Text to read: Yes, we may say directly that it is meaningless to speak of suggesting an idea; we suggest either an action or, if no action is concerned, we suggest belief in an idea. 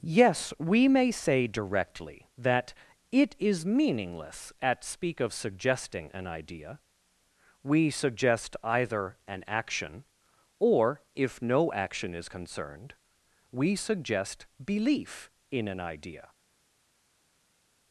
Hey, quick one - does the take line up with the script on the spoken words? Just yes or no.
no